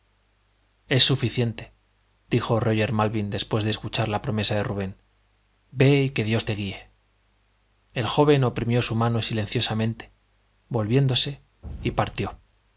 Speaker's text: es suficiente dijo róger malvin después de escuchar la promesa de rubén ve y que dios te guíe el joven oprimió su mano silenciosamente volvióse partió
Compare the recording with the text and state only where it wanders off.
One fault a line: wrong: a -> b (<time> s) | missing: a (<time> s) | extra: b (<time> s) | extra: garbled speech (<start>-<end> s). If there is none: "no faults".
extra: y (11.8 s)